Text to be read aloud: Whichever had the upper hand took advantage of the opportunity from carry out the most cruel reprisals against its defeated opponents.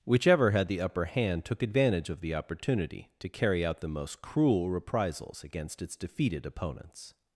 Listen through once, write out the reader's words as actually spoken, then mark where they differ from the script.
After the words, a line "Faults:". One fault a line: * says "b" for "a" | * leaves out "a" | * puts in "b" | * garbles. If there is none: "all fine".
Whichever had the upper hand took advantage of the opportunity to carry out the most cruel reprisals against its defeated opponents.
Faults:
* says "to" for "from"